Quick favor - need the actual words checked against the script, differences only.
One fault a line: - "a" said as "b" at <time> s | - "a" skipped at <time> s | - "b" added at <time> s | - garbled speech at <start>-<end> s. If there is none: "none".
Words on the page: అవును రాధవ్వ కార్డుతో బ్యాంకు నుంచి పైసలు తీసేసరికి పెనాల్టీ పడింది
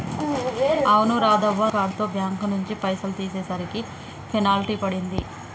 none